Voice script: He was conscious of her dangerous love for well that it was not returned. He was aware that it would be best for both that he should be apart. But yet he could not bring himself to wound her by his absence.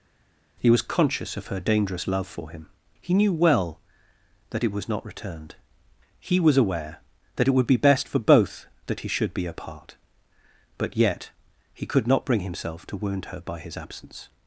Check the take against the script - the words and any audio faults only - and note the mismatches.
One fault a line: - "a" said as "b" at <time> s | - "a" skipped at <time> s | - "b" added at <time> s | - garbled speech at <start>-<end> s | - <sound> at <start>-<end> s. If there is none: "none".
- "him He knew" added at 2.5 s